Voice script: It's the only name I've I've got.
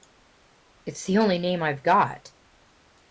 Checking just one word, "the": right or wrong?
right